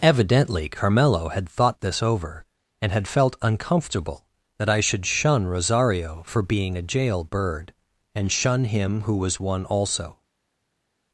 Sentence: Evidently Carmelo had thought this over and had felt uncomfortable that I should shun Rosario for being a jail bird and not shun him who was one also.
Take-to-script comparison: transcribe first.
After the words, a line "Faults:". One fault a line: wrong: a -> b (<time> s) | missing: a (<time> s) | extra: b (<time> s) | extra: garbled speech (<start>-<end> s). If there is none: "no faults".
Evidently Carmelo had thought this over and had felt uncomfortable that I should shun Rosario for being a jail bird and shun him who was one also.
Faults:
missing: not (8.3 s)